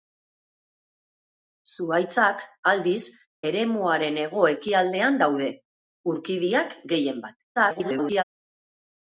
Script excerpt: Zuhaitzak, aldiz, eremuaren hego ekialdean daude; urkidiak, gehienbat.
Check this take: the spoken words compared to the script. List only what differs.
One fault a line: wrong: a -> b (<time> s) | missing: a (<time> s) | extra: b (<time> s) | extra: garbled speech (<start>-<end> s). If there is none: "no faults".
extra: garbled speech (7.6-8.2 s)